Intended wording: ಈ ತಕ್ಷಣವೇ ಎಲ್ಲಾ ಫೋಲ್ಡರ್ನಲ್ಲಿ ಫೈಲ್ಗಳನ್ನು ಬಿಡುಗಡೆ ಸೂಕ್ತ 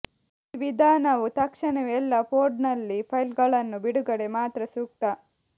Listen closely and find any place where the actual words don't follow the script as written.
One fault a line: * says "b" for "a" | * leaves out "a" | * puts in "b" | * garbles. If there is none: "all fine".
* puts in "ವಿಧಾನವು"
* puts in "ಮಾತ್ರ"